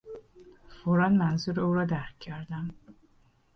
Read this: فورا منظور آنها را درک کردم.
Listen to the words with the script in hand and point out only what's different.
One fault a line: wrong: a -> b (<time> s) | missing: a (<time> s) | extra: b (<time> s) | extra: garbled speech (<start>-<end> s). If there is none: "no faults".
wrong: آنها -> او (1.6 s)